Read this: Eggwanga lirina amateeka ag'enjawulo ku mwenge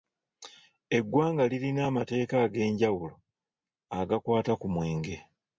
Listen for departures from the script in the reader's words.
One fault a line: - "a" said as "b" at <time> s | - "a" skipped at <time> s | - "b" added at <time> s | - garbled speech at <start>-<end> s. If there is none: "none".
- "agakwata" added at 4.0 s